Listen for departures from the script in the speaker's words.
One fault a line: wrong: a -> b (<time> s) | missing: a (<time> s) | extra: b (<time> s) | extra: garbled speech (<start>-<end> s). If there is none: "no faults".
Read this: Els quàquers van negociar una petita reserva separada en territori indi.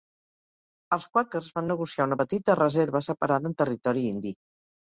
no faults